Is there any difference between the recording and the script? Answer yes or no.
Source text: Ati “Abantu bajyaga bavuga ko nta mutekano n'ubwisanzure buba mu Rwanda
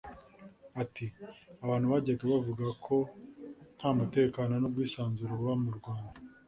no